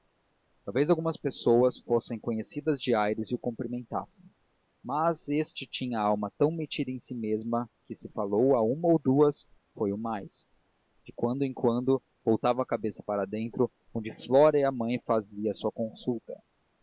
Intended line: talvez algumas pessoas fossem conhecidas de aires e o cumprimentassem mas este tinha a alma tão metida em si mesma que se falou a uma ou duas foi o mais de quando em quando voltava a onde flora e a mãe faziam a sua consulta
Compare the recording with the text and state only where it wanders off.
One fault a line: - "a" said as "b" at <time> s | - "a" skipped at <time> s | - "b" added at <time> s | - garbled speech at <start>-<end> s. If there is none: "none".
- "cabeça para dentro" added at 12.6 s